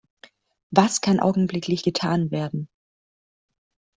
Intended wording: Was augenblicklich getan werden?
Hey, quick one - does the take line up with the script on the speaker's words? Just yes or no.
no